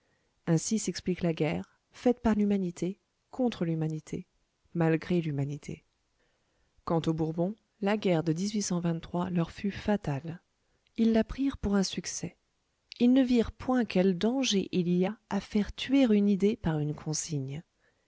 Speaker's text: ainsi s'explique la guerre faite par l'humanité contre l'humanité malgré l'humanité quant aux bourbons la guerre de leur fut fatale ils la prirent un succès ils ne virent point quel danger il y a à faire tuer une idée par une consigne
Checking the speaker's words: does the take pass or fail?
fail